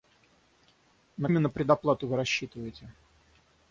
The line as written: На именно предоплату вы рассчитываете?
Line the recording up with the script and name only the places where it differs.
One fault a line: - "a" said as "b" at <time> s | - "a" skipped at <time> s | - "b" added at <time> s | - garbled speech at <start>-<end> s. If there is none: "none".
none